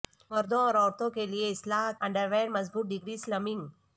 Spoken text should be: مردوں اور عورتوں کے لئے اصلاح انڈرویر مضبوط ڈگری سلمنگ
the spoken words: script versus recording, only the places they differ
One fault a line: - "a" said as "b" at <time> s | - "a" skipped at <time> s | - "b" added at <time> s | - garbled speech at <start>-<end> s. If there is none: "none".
none